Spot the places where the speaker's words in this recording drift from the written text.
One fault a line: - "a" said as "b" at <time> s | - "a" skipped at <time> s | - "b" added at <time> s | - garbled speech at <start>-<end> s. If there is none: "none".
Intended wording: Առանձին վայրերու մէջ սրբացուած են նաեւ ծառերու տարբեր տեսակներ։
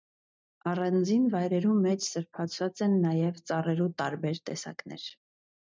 none